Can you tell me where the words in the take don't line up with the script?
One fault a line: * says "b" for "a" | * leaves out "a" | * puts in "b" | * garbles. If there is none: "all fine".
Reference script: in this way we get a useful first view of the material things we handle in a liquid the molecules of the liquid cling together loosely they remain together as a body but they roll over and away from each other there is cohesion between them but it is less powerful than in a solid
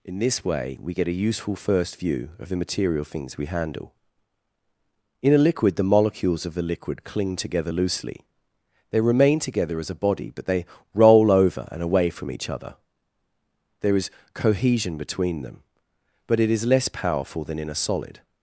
all fine